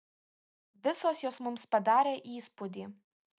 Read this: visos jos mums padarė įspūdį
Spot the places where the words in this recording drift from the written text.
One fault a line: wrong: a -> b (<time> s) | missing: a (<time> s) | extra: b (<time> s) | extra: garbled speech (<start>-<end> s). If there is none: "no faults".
no faults